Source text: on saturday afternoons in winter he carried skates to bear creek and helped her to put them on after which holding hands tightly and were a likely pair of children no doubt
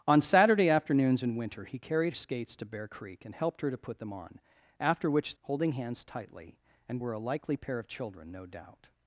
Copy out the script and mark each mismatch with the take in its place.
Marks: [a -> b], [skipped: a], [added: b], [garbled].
on saturday afternoons in winter he carried skates to bear creek and helped her to put them on after which holding hands tightly and were a likely pair of children no doubt